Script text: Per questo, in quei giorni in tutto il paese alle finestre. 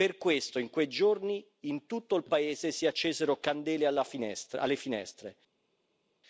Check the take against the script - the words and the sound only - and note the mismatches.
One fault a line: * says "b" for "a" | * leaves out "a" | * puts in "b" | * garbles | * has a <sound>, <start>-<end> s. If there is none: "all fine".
* puts in "si accesero candele"